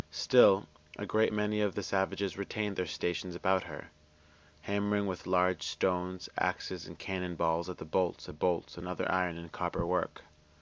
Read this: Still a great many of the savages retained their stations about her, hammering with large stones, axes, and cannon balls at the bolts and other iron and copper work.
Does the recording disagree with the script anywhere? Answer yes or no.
yes